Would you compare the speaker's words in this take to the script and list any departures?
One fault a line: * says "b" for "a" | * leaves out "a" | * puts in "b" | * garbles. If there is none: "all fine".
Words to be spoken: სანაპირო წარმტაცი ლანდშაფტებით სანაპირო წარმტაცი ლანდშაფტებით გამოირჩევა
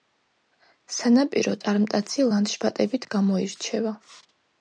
* leaves out "სანაპირო წარმტაცი ლანდშაფტებით"